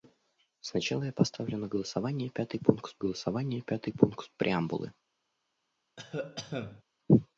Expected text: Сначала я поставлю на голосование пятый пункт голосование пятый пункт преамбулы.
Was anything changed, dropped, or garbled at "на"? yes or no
no